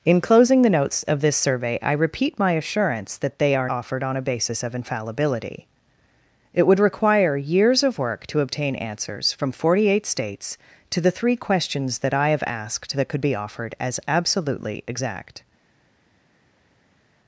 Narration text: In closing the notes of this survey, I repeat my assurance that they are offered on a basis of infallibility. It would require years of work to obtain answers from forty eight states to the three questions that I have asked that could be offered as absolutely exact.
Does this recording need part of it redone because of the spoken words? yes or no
no